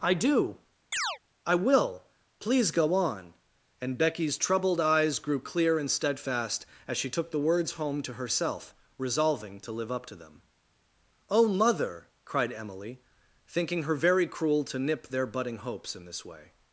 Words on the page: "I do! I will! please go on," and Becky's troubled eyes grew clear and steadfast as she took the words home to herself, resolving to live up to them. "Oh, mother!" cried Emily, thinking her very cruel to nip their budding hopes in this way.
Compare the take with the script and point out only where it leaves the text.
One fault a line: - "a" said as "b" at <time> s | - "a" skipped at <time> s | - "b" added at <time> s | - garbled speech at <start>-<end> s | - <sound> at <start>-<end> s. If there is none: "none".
- chirp at 0.9-1.2 s